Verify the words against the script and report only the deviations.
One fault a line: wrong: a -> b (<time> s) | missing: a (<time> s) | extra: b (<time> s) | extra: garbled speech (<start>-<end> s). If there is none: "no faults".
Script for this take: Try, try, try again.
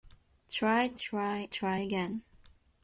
no faults